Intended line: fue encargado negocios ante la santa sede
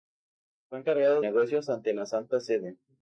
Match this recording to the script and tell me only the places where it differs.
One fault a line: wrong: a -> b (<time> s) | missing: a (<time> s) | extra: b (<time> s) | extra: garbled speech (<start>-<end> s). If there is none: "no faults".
no faults